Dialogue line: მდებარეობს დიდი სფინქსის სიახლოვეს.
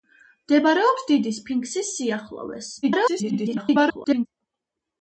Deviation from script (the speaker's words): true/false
true